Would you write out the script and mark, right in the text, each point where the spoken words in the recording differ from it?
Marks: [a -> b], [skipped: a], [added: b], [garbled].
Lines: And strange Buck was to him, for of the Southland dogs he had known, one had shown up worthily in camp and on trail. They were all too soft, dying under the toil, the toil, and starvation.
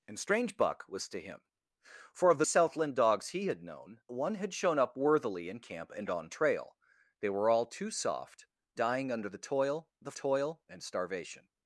And strange Buck was to him, for of the Southland dogs he had known, one had shown up worthily in camp and on trail. They were all too soft, dying under the toil, the toil, and starvation.